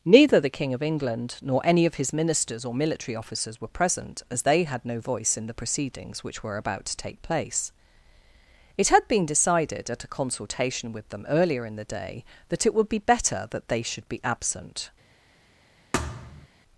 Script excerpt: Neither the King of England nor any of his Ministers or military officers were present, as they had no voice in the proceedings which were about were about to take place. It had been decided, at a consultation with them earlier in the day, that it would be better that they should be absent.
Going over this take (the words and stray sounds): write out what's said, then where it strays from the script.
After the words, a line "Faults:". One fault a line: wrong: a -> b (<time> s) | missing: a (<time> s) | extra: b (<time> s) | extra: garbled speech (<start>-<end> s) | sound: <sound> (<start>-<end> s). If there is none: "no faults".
Neither the King of England nor any of his Ministers or military officers were present, as they had no voice in the proceedings which were about to take place. It had been decided, at a consultation with them earlier in the day, that it would be better that they should be absent.
Faults:
missing: were about (6.9 s)
sound: thud (15.9-16.5 s)